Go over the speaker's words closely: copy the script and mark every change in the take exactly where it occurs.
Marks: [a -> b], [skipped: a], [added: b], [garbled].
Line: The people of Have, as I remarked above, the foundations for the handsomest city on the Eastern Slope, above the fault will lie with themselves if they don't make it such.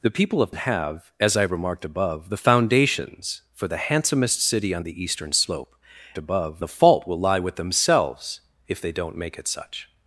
The people of Have, as I remarked above, the foundations for the handsomest city on the Eastern Slope, above the fault will lie with themselves if they don't make it such.